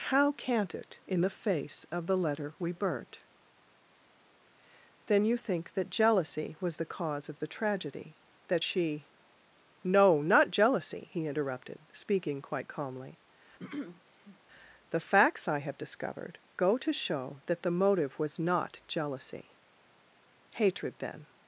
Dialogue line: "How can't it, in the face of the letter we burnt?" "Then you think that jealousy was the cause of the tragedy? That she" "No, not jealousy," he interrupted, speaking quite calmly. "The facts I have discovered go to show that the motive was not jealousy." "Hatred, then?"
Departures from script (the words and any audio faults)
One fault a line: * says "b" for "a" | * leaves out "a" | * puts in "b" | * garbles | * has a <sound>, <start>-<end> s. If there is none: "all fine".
* has a throat clearing, 13.6-14.4 s